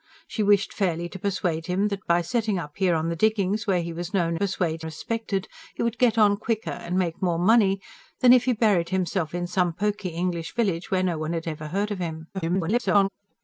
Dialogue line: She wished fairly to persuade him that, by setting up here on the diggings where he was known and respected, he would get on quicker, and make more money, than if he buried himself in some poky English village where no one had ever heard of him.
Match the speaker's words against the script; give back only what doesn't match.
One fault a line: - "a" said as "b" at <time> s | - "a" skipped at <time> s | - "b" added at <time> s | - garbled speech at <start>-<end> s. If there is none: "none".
- "and" said as "persuade" at 4.4 s
- garbled speech at 12.3-13.1 s